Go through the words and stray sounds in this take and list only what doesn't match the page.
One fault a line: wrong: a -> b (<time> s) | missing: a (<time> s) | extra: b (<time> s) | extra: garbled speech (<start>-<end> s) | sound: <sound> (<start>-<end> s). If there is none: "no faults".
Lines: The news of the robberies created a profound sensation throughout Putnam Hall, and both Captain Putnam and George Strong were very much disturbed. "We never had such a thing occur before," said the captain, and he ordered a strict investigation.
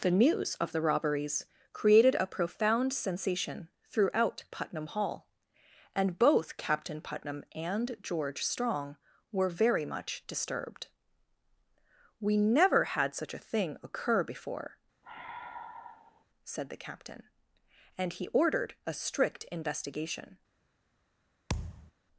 sound: sigh (15.0-16.2 s)
sound: thud (21.5-21.9 s)